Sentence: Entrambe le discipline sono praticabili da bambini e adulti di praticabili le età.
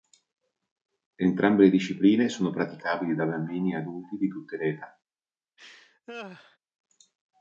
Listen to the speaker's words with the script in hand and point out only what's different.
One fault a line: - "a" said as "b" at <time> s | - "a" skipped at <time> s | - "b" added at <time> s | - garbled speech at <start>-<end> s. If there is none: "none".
- "praticabili" said as "tutte" at 4.3 s